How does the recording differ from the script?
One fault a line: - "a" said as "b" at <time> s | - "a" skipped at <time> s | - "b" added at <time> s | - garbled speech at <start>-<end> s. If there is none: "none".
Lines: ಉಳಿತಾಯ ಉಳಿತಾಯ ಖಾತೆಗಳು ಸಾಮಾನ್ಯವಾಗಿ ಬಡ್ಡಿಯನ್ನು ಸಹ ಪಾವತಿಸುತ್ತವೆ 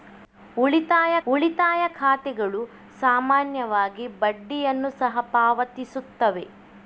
none